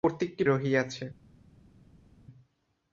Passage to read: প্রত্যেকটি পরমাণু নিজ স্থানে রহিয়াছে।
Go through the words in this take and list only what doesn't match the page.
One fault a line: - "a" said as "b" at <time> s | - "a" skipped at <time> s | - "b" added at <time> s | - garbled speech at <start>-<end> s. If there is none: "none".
- "পরমাণু নিজ স্থানে" skipped at 0.4 s